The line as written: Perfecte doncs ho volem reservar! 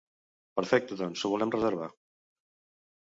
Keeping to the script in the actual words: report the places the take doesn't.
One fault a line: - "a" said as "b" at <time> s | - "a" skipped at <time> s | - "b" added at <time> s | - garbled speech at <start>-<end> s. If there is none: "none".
none